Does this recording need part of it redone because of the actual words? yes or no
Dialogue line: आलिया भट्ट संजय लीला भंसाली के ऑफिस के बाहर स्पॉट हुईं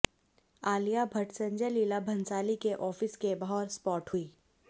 no